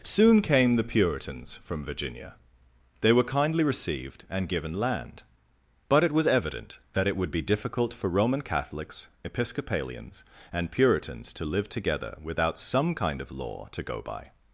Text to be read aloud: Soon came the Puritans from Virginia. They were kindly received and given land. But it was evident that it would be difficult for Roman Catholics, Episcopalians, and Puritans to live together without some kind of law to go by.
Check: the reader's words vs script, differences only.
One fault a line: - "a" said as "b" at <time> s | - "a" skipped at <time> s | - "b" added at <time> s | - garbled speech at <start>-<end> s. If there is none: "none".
none